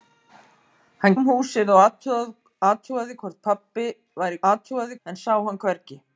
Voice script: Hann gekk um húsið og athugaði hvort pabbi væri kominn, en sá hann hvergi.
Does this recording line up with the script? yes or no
no